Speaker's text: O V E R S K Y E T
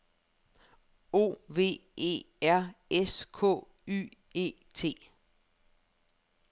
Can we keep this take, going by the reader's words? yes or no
yes